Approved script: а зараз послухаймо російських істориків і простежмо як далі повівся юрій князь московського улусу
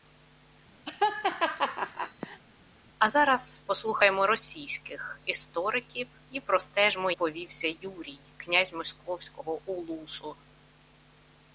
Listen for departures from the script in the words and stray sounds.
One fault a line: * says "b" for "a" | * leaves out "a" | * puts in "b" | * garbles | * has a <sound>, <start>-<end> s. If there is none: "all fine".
* has a laugh, 0.9-2.4 s
* leaves out "як далі"